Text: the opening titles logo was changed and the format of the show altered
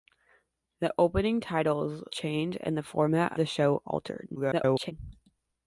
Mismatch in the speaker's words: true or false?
true